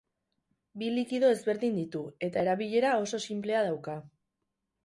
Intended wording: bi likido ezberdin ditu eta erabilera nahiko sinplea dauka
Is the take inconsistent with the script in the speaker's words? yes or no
yes